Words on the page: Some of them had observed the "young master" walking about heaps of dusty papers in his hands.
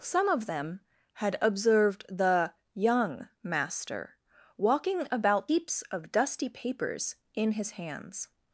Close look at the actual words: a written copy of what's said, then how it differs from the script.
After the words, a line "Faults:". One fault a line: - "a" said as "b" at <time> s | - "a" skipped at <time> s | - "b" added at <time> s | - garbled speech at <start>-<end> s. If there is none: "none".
Some of them had observed the "young master" walking about heaps of dusty papers in his hands.
Faults:
none